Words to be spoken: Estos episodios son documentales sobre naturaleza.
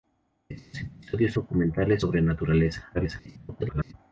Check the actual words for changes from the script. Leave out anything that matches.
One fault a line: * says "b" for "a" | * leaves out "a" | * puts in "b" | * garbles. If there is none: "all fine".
* leaves out "son"
* garbles